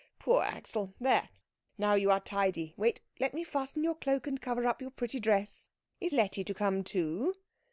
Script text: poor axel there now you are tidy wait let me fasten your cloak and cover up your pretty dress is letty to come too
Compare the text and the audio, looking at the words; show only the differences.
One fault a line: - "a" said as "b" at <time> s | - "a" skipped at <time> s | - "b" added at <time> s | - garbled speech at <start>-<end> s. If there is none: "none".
none